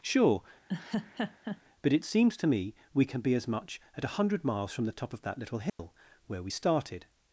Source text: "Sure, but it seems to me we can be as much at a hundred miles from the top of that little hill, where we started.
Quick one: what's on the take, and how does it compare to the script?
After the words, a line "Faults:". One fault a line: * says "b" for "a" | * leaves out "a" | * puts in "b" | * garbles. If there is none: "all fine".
"Sure, but it seems to me we can be as much at a hundred miles from the top of that little hill, where we started.
Faults:
all fine